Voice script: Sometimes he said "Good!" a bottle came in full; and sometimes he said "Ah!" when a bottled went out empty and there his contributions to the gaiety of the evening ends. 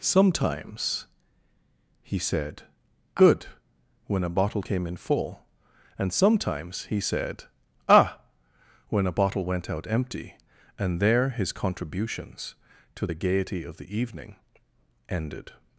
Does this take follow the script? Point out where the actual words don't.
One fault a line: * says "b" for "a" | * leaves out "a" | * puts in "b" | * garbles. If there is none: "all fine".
* puts in "when"
* says "bottle" for "bottled"
* says "ended" for "ends"